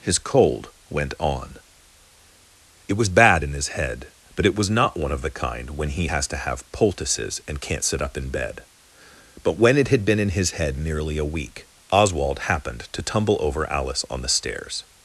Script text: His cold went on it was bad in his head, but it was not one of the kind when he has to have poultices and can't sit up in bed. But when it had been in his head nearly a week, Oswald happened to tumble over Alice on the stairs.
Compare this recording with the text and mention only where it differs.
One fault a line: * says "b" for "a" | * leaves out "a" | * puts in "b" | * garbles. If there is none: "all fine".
all fine